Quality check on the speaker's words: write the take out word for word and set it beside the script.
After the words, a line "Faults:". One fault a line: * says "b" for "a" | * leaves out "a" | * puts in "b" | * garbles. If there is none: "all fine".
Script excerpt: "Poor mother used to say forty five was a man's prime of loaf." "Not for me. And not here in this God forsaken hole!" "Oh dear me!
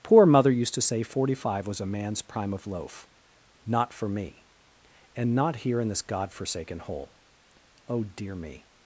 "Poor mother used to say forty five was a man's prime of loaf." "Not for me. And not here in this God forsaken hole!" "Oh dear me!
Faults:
all fine